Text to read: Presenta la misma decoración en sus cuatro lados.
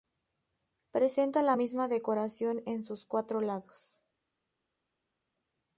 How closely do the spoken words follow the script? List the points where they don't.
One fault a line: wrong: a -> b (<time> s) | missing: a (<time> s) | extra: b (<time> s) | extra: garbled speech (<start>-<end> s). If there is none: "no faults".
no faults